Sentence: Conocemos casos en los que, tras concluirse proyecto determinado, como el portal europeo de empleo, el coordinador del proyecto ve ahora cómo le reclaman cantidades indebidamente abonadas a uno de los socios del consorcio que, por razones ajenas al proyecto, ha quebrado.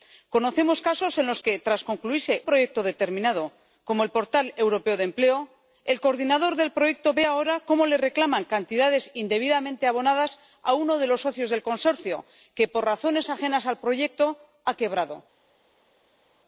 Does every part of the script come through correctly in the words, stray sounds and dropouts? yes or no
yes